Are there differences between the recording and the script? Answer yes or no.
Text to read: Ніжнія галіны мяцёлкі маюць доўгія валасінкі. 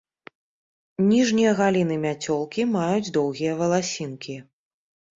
no